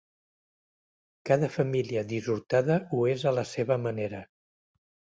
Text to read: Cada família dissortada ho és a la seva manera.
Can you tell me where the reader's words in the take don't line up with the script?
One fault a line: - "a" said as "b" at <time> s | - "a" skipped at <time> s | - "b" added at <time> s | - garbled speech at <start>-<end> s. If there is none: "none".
none